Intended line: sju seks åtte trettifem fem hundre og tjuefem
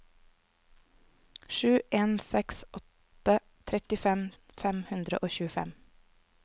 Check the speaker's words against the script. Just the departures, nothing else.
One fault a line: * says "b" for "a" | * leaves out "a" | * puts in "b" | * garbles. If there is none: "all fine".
* puts in "en"